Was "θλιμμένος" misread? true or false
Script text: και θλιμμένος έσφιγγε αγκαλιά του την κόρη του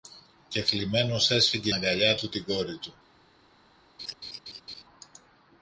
false